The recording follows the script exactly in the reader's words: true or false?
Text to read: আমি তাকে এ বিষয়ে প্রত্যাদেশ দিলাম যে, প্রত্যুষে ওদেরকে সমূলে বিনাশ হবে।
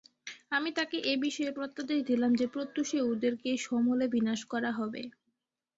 false